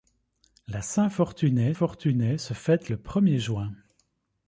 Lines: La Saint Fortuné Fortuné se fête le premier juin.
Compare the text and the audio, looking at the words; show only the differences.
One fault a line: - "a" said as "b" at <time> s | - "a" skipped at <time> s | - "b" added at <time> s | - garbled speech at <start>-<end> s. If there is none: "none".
none